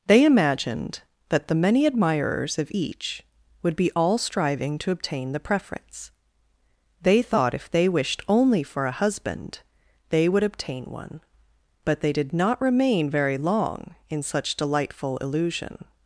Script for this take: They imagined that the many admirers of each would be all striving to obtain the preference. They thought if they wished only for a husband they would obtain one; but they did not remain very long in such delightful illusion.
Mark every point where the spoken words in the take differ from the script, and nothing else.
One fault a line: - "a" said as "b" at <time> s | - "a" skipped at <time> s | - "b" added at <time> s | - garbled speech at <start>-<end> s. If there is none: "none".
none